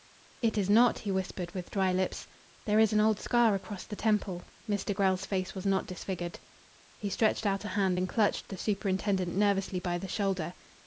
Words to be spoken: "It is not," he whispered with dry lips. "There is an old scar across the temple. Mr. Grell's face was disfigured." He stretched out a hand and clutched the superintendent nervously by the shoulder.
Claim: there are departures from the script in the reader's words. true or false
true